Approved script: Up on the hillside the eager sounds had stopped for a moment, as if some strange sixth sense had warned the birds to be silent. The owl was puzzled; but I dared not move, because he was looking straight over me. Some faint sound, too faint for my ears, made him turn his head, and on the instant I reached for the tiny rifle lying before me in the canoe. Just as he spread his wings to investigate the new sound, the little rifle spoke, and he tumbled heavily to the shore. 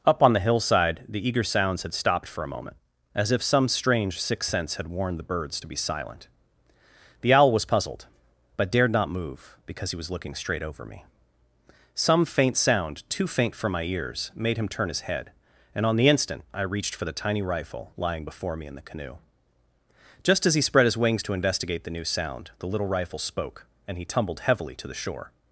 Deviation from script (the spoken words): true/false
true